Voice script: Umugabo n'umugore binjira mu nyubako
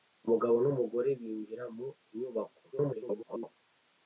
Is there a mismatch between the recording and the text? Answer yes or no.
yes